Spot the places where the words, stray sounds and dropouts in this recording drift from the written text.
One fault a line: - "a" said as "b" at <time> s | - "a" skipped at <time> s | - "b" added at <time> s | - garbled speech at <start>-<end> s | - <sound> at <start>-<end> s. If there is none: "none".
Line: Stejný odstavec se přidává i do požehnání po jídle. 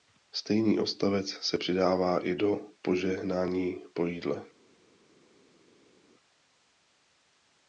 none